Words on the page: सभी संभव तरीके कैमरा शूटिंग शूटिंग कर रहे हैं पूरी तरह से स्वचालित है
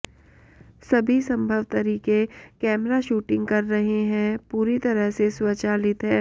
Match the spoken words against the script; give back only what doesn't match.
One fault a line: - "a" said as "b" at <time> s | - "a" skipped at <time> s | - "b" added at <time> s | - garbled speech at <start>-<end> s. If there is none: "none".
- "शूटिंग" skipped at 3.5 s